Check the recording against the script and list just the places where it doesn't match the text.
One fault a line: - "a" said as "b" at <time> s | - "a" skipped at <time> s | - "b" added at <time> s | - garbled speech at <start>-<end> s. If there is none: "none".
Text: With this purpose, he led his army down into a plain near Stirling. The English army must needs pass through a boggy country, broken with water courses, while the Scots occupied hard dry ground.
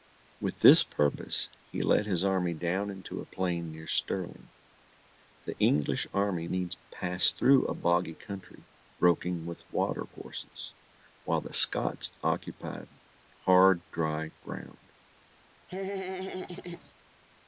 - "must" skipped at 6.5 s